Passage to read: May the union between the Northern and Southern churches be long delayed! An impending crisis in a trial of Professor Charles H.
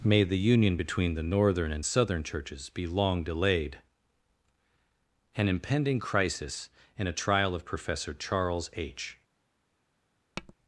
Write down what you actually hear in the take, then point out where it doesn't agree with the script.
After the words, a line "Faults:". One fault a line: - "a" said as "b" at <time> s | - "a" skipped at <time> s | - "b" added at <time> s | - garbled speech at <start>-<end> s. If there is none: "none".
May the union between the Northern and Southern churches be long delayed! An impending crisis in a trial of Professor Charles H.
Faults:
none